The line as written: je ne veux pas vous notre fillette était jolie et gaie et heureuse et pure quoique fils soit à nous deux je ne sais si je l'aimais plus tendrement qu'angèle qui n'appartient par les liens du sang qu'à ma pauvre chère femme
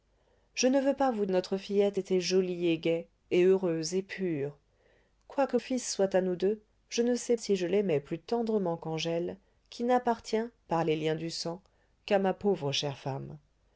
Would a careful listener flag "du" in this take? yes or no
no